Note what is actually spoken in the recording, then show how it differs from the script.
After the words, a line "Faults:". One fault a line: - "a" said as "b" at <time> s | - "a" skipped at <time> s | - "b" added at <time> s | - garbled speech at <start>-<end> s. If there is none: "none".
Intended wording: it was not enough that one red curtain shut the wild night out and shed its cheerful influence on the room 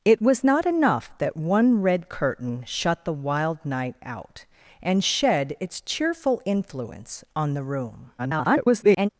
it was not enough that one red curtain shut the wild night out and shed its cheerful influence on the room [garbled]
Faults:
- garbled speech at 8.2-9.1 s